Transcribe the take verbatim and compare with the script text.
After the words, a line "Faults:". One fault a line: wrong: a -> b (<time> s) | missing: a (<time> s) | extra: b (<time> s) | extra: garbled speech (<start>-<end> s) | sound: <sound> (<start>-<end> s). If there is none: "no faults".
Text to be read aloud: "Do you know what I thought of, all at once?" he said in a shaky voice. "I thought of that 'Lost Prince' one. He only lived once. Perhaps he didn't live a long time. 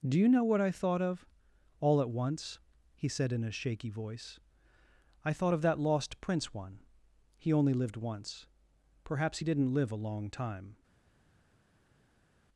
"Do you know what I thought of, all at once?" he said in a shaky voice. "I thought of that 'Lost Prince' one. He only lived once. Perhaps he didn't live a long time.
Faults:
no faults